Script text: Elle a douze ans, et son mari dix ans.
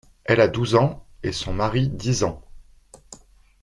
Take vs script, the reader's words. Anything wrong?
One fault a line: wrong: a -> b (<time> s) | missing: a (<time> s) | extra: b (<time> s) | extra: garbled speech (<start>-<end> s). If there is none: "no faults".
no faults